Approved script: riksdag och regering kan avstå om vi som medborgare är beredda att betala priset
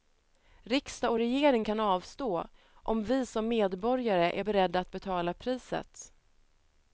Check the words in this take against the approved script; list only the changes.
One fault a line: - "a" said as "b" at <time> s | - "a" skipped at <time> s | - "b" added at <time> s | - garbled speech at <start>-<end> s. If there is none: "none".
none